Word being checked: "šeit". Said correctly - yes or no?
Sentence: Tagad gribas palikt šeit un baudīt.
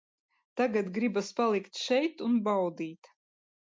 yes